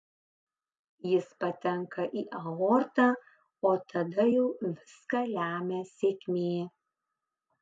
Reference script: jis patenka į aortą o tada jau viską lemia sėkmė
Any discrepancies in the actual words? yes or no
no